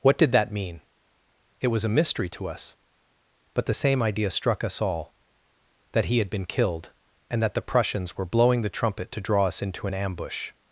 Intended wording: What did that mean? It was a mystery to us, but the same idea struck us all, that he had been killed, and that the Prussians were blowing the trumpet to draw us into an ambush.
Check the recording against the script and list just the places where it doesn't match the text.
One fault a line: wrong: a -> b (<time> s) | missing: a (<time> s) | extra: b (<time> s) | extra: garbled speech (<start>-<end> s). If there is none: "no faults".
no faults